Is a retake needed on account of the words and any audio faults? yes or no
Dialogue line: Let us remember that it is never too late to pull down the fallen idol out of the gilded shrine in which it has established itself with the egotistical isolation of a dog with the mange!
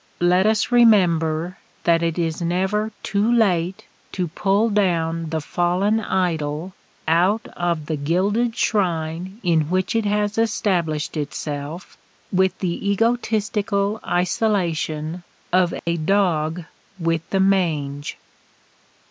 yes